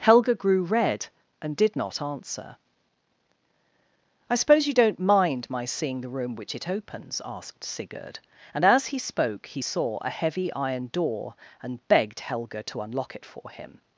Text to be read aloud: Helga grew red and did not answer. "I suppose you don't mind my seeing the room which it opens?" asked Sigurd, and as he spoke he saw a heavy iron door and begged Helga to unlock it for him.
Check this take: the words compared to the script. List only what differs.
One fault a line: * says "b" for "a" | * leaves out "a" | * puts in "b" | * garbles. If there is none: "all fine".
all fine